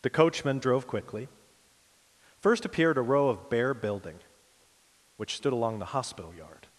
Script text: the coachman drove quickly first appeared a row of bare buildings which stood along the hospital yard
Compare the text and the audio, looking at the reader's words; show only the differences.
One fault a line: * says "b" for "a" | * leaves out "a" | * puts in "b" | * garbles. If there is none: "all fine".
* says "building" for "buildings"